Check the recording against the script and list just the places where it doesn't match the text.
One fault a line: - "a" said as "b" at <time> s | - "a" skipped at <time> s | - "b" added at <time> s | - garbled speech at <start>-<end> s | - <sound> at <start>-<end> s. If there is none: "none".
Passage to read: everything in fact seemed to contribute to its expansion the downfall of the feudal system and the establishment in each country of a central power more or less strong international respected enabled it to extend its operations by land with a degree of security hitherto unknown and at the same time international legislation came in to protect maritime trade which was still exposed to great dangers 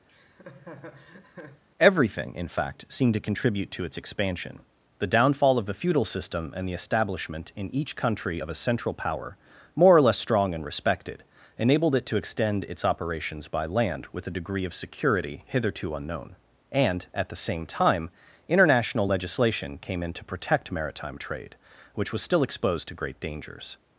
- laugh at 0.1-1.6 s
- "international" said as "and" at 10.5 s